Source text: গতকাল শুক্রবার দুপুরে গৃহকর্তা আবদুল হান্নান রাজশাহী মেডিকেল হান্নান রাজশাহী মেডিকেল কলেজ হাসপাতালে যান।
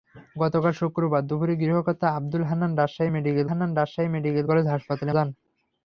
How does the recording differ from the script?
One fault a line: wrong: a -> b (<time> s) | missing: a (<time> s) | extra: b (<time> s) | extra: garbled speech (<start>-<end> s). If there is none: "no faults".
no faults